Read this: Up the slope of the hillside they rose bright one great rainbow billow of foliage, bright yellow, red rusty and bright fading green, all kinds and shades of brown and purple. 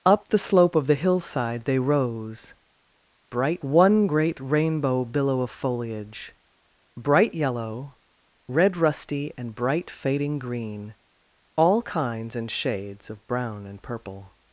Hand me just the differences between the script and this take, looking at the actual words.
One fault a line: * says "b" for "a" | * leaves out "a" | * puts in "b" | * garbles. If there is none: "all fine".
all fine